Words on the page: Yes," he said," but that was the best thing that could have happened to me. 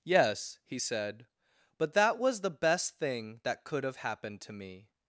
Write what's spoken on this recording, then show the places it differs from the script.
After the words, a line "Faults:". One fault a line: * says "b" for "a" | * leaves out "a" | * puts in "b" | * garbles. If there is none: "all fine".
Yes," he said," but that was the best thing that could have happened to me.
Faults:
all fine